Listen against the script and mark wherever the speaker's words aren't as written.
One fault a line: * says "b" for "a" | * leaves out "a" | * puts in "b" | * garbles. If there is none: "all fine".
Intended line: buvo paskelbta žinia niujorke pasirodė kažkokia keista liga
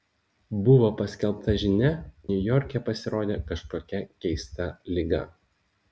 all fine